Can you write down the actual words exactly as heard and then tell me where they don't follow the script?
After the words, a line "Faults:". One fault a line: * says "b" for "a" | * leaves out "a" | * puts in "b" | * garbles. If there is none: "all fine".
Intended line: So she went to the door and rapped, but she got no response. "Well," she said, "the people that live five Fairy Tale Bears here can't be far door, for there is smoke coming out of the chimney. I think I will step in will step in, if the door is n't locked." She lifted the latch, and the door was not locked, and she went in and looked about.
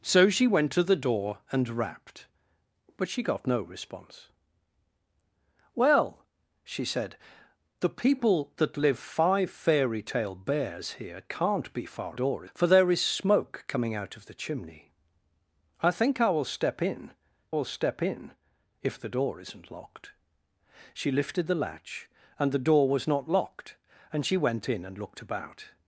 So she went to the door and rapped, but she got no response. "Well," she said, "the people that live five Fairy Tale Bears here can't be far door, for there is smoke coming out of the chimney. I think I will step in will step in, if the door is n't locked." She lifted the latch, and the door was not locked, and she went in and looked about.
Faults:
all fine